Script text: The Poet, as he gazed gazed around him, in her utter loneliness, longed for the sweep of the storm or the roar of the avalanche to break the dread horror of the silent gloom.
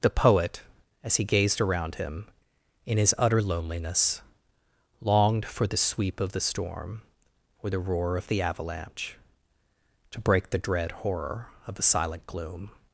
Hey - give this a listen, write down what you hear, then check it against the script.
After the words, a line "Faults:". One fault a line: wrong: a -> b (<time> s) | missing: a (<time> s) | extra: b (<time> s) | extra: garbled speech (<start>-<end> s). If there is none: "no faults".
The Poet, as he gazed around him, in his utter loneliness, longed for the sweep of the storm or the roar of the avalanche to break the dread horror of the silent gloom.
Faults:
missing: gazed (1.6 s)
wrong: her -> his (3.0 s)